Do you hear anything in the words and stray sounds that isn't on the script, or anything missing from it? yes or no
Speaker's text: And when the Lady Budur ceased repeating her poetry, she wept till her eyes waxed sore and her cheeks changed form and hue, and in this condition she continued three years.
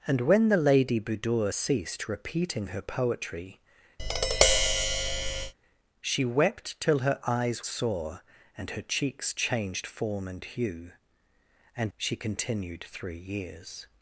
yes